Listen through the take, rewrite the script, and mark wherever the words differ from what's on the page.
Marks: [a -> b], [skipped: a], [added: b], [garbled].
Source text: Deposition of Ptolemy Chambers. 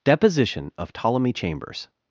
Deposition of Ptolemy Chambers.